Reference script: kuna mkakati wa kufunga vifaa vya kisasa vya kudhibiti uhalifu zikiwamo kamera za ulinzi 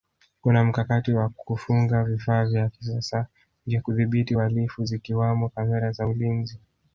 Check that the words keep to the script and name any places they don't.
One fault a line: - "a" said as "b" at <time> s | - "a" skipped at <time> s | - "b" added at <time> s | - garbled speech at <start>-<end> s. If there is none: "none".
none